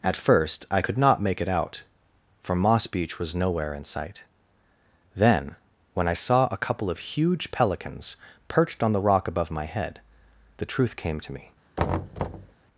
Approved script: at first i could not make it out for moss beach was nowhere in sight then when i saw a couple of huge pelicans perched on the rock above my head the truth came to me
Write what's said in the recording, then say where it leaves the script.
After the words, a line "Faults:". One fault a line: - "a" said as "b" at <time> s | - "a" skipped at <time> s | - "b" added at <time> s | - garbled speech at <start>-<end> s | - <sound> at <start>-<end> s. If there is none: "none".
at first i could not make it out for moss beach was nowhere in sight then when i saw a couple of huge pelicans perched on the rock above my head the truth came to me
Faults:
- thud at 11.8-12.6 s